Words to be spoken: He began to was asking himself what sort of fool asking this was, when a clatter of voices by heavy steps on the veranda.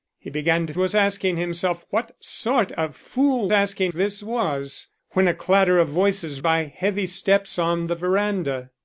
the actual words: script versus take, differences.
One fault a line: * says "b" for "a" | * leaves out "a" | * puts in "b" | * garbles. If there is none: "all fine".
all fine